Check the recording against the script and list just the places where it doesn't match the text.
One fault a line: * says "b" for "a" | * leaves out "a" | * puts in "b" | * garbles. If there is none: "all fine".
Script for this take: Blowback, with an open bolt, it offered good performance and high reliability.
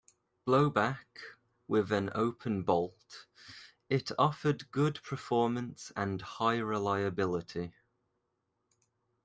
all fine